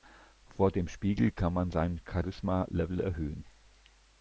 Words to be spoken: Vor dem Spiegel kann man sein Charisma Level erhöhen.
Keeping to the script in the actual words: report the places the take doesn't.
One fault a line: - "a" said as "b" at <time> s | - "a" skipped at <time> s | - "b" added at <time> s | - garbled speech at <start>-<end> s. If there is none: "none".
none